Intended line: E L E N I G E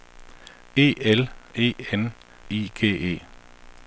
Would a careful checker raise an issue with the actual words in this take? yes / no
no